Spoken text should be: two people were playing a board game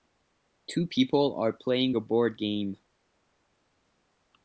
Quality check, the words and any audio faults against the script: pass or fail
fail